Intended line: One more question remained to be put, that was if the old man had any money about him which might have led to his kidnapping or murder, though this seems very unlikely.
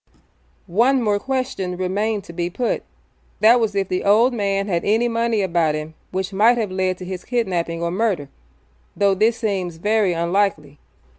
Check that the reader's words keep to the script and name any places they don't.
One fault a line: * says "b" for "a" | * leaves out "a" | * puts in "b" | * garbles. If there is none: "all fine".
all fine